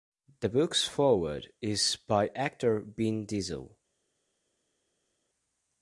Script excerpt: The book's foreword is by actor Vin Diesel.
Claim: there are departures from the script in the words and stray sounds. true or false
false